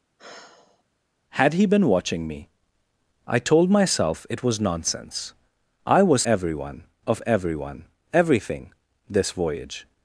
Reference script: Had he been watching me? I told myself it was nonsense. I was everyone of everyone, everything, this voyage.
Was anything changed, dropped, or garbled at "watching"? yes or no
no